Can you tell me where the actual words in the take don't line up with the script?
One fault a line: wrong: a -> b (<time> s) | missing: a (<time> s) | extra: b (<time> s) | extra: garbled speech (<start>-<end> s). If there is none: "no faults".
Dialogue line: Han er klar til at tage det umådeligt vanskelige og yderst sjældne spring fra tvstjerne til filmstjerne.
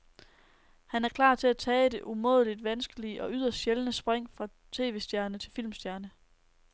no faults